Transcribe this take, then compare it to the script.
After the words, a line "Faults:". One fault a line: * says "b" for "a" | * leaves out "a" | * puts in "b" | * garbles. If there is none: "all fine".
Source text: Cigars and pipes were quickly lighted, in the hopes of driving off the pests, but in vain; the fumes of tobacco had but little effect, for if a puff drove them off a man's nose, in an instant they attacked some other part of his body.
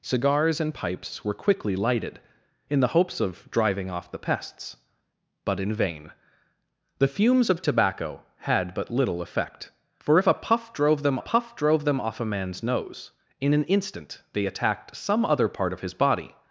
Cigars and pipes were quickly lighted, in the hopes of driving off the pests, but in vain; the fumes of tobacco had but little effect, for if a puff drove them puff drove them off a man's nose, in an instant they attacked some other part of his body.
Faults:
* puts in "puff drove them"